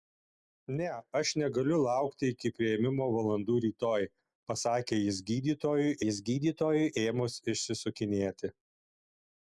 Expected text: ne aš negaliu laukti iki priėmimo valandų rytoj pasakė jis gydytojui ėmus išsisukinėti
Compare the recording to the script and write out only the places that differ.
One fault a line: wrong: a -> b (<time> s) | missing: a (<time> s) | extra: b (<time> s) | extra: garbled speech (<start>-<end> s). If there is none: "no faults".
extra: jis gydytojui (6.0 s)